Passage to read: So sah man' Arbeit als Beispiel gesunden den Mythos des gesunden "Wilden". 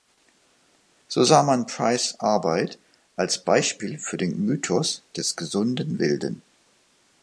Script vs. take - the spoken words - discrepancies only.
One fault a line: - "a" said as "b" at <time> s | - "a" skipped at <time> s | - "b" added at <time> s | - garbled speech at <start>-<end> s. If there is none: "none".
- "Price" added at 1.7 s
- "gesunden" said as "für" at 4.0 s